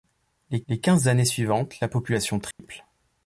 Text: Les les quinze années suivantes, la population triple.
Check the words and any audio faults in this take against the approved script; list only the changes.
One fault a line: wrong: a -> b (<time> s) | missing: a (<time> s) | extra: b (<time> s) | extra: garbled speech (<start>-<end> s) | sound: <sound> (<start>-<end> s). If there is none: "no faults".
sound: dropout (2.5-2.6 s)